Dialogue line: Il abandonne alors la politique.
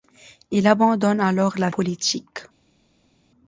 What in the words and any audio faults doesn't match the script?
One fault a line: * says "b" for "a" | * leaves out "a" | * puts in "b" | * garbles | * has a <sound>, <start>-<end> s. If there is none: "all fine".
all fine